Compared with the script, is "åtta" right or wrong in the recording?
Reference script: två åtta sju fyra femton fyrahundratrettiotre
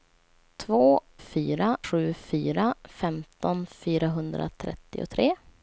wrong